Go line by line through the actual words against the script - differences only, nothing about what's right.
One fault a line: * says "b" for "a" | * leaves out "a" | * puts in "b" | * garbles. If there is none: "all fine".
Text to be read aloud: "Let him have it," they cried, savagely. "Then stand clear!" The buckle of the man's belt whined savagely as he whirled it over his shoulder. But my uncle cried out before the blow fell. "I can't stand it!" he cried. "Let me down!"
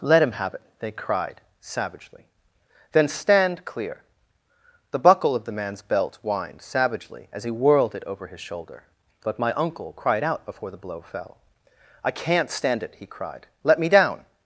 all fine